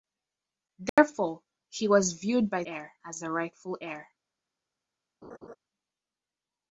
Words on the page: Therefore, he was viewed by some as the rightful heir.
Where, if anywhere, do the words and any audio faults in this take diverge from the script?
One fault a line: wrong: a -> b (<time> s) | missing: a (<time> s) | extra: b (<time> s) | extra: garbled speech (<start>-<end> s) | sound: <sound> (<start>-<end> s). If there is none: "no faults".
sound: dropout (0.9-1.0 s)
wrong: some -> heir (2.6 s)
sound: laugh (5.2-5.6 s)